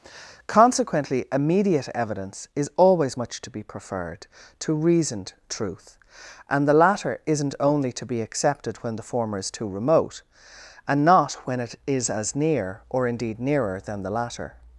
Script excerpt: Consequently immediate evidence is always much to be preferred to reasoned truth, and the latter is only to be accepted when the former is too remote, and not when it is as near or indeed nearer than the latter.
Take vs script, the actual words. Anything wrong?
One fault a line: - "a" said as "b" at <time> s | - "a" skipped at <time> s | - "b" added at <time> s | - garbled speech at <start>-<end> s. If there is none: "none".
- "is" said as "isn't" at 7.3 s